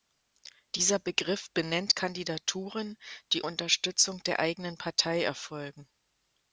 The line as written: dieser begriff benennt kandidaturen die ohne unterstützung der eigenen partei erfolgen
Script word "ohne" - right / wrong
wrong